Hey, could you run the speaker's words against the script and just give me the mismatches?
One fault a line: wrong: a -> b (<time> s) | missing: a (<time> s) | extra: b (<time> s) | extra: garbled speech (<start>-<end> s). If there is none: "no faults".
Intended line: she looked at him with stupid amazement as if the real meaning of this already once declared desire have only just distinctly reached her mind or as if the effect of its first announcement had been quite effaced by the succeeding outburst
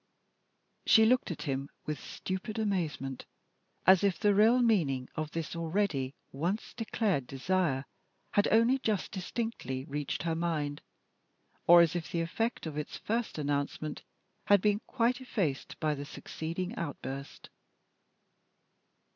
wrong: have -> had (8.3 s)